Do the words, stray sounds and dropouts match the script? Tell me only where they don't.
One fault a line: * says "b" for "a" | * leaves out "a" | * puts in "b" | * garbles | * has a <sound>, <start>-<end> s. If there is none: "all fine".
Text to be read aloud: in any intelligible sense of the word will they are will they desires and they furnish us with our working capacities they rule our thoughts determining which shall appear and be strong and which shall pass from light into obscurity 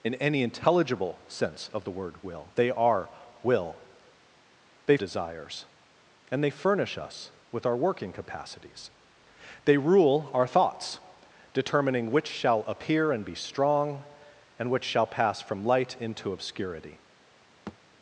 * has a thud, 17.7-17.8 s